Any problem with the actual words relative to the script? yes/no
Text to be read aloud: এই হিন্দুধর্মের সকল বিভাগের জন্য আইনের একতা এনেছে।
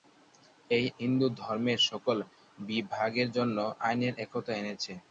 no